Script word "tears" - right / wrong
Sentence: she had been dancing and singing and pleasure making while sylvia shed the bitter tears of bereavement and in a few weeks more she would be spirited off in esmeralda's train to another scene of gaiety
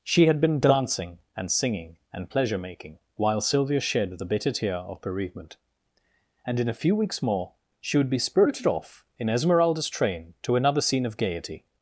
wrong